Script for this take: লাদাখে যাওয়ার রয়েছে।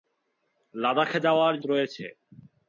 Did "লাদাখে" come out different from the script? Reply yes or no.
no